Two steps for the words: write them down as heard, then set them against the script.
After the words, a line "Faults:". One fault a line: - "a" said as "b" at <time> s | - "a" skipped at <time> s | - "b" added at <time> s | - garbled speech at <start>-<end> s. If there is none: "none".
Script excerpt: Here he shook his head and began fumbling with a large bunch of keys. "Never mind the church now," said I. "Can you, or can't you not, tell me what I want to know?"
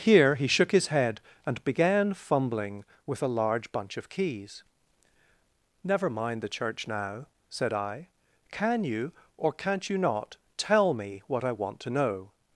Here he shook his head and began fumbling with a large bunch of keys. "Never mind the church now," said I. "Can you, or can't you not, tell me what I want to know?"
Faults:
none